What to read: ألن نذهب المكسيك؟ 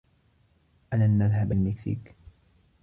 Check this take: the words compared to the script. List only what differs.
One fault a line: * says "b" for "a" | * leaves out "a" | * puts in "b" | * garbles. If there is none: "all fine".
all fine